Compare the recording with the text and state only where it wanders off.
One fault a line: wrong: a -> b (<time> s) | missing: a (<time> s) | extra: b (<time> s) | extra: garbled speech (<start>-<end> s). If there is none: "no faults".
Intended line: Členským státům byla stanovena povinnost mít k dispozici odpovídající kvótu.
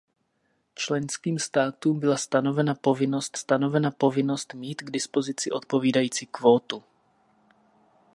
extra: stanovena povinnost (3.3 s)